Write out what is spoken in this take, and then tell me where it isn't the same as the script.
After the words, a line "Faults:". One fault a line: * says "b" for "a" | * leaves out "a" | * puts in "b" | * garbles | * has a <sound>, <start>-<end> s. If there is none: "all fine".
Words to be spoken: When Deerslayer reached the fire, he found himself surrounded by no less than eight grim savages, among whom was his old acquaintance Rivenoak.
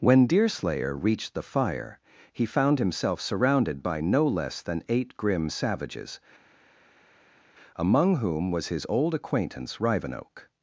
When Deerslayer reached the fire, he found himself surrounded by no less than eight grim savages, among whom was his old acquaintance Rivenoak.
Faults:
all fine